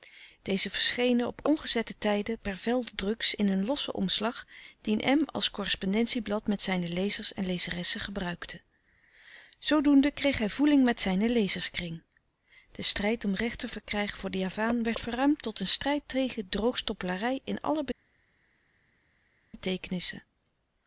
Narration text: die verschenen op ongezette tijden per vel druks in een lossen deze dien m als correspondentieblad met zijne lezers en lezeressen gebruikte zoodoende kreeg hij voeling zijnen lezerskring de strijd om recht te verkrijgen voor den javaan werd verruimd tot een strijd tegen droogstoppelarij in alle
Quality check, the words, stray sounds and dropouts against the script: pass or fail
fail